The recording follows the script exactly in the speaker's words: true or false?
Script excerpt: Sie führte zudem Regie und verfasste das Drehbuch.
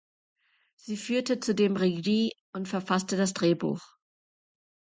true